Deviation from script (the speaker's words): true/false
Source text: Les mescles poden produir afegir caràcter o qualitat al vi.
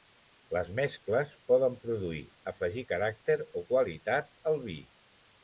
false